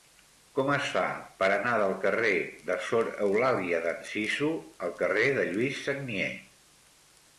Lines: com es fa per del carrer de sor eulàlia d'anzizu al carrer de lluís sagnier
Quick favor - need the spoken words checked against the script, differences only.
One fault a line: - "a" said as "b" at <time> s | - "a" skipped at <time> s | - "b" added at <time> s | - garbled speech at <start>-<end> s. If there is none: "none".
- "anar" added at 1.6 s